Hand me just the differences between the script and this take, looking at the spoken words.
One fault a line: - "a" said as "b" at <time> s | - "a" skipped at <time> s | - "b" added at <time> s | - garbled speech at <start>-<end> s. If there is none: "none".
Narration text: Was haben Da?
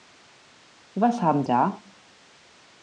none